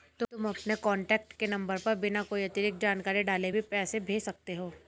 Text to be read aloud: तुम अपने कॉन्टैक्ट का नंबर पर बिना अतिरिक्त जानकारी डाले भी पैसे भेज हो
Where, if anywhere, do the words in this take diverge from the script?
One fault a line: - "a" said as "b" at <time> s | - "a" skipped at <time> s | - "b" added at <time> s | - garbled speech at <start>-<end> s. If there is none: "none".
- "का" said as "के" at 1.3 s
- "कोई" added at 2.2 s
- "सकते" added at 4.2 s